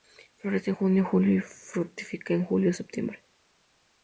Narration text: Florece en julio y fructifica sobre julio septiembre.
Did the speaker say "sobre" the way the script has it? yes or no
no